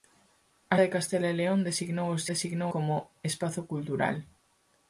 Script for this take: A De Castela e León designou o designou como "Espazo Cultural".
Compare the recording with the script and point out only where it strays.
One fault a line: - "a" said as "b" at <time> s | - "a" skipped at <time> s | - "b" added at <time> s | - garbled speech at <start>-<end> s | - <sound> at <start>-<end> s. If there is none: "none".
none